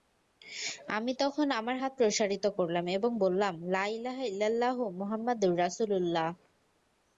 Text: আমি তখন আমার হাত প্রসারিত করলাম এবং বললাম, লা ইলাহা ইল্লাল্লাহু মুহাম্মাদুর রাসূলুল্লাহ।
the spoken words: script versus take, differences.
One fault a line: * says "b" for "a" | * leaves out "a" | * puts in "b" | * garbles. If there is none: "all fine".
all fine